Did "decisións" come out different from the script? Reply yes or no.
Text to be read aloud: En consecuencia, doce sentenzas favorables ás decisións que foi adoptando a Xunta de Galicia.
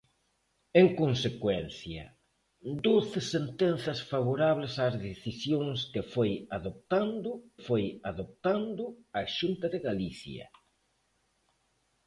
no